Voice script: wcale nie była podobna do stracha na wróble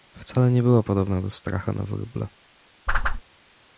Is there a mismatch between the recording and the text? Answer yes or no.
no